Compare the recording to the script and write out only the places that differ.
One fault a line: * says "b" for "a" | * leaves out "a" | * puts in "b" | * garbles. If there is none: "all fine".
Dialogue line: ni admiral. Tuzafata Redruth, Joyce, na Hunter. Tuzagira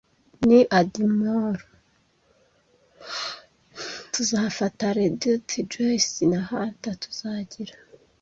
all fine